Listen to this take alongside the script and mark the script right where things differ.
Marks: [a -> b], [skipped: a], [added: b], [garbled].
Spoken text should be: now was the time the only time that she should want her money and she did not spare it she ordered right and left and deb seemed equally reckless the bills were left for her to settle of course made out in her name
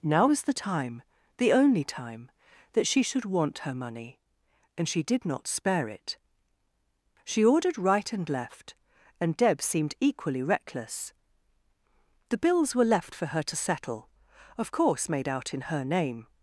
now was the time the only time that she should want her money and she did not spare it she ordered right and left and deb seemed equally reckless the bills were left for her to settle of course made out in her name